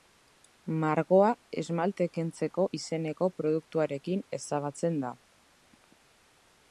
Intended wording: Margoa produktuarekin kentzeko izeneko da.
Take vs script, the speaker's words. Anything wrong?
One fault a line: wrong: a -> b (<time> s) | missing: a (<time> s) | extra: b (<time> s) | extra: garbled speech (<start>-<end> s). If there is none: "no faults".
wrong: produktuarekin -> esmalte (1.6 s)
extra: produktuarekin ezabatzen (3.4 s)